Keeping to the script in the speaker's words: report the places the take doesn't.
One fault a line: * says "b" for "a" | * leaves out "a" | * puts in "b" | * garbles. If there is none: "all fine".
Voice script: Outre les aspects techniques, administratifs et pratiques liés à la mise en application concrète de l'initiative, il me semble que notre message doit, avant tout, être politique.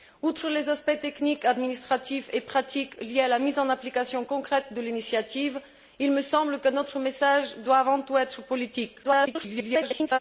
* garbles